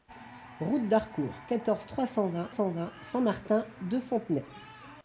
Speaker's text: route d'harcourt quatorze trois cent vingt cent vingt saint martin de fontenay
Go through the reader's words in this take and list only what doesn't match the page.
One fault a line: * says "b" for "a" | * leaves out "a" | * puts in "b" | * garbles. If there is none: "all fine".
all fine